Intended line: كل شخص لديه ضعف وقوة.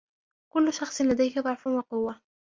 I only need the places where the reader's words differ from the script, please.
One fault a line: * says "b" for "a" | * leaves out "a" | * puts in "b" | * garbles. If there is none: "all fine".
all fine